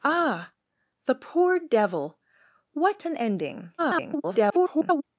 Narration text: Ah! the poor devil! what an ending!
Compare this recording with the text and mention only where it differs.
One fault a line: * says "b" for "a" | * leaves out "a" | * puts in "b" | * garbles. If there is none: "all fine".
* garbles